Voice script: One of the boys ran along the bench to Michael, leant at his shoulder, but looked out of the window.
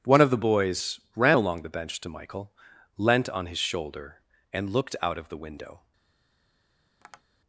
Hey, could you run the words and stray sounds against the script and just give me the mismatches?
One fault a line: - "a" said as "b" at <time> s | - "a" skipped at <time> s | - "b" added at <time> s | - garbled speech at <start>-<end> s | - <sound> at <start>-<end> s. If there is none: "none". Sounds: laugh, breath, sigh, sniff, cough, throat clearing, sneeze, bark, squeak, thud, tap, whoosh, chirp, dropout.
- "at" said as "on" at 3.3 s
- "but" said as "and" at 4.5 s
- tap at 7.0-7.2 s